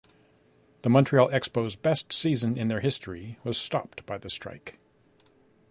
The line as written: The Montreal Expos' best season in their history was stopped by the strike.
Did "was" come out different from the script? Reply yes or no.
no